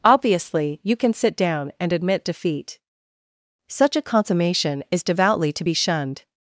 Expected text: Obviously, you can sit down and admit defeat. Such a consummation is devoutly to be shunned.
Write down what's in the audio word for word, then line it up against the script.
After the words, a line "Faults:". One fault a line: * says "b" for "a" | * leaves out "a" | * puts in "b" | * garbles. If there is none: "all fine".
Obviously, you can sit down and admit defeat. Such a consummation is devoutly to be shunned.
Faults:
all fine